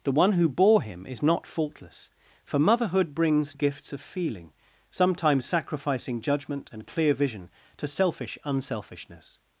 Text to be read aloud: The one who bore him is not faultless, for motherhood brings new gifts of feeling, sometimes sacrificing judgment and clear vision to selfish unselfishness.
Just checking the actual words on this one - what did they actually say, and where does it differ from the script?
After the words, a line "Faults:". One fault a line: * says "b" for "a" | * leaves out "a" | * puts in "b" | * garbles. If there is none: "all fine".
The one who bore him is not faultless, for motherhood brings gifts of feeling, sometimes sacrificing judgment and clear vision to selfish unselfishness.
Faults:
* leaves out "new"